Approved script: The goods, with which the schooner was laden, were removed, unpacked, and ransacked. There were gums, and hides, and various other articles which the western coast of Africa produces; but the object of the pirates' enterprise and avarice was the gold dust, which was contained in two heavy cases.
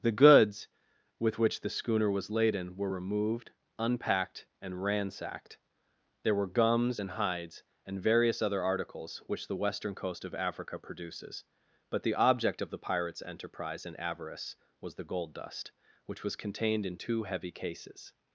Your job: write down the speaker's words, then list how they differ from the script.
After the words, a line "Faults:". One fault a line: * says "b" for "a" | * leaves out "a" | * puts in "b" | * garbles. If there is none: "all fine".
The goods, with which the schooner was laden, were removed, unpacked, and ransacked. There were gums, and hides, and various other articles which the western coast of Africa produces; but the object of the pirates' enterprise and avarice was the gold dust, which was contained in two heavy cases.
Faults:
all fine